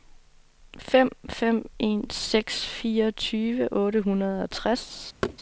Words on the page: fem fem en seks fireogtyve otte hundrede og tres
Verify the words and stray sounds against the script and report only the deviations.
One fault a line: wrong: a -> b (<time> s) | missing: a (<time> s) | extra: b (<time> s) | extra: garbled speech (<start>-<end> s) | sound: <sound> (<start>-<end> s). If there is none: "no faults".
sound: thud (5.2-5.4 s)